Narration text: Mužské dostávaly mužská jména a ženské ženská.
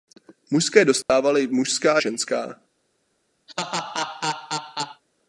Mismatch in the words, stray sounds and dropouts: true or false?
true